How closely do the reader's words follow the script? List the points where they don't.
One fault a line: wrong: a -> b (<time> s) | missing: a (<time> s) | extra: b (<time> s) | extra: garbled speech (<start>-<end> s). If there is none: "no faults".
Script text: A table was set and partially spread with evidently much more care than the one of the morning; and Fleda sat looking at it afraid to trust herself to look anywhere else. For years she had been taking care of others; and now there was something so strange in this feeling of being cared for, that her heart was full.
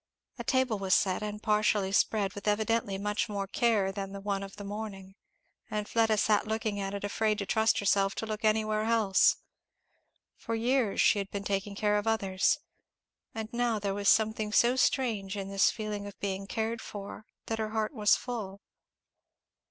no faults